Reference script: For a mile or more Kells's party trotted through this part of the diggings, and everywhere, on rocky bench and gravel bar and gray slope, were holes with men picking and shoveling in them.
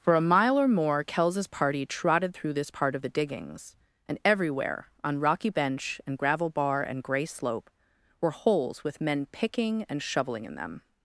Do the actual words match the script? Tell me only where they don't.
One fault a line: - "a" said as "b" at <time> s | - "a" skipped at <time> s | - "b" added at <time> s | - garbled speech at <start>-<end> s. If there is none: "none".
none